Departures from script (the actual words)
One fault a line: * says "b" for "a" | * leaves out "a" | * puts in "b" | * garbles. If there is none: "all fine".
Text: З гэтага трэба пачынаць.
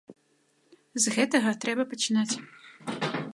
all fine